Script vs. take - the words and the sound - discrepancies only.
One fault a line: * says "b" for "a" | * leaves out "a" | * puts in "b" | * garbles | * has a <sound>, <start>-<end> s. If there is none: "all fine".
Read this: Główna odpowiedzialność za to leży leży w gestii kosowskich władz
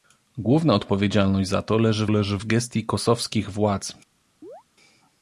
* has a chirp, 4.4-4.6 s